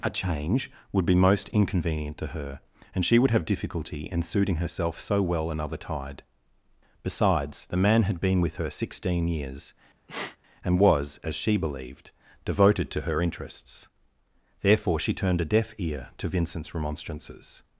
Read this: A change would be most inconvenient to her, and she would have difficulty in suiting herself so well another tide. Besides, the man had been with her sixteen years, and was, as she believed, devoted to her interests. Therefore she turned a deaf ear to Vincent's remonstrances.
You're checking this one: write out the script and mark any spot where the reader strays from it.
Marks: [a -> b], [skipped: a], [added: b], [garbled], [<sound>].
A change would be most inconvenient to her, and she would have difficulty in suiting herself so well another tide. Besides, the man had been with her sixteen years, [sneeze] and was, as she believed, devoted to her interests. Therefore she turned a deaf ear to Vincent's remonstrances.